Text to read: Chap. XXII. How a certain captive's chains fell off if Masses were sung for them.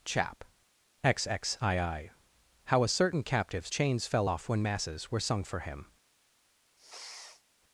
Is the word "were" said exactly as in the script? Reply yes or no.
yes